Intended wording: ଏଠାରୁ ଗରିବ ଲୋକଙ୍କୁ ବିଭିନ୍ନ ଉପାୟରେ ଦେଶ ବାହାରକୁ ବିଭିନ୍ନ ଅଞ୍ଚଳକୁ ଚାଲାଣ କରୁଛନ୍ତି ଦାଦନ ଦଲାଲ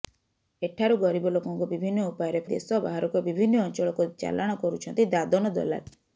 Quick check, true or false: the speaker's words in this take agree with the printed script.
true